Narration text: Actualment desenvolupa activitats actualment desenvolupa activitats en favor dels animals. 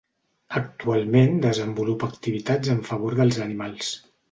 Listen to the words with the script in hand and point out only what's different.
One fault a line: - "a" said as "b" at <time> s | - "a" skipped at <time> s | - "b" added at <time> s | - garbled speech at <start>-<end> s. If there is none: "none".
- "actualment desenvolupa activitats" skipped at 2.7 s